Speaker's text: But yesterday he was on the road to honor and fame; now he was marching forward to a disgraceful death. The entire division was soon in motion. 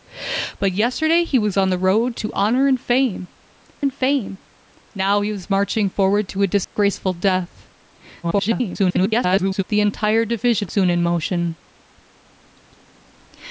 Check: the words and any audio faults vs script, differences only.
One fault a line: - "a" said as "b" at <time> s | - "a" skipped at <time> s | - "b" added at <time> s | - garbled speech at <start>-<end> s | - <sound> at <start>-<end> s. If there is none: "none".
- "and fame" added at 3.8 s
- dropout at 6.6-6.8 s
- garbled speech at 8.2-9.6 s
- "was" skipped at 10.7 s